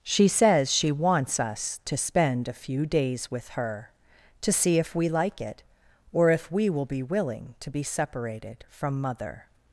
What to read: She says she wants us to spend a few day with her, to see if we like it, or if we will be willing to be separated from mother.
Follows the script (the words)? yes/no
no